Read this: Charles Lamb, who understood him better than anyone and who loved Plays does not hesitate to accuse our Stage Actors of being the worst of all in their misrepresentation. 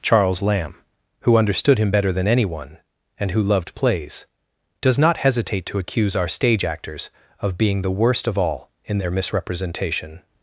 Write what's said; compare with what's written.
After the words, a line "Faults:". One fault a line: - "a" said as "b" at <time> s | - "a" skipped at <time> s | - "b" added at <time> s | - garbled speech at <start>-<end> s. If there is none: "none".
Charles Lamb, who understood him better than anyone and who loved Plays does not hesitate to accuse our Stage Actors of being the worst of all in their misrepresentation.
Faults:
none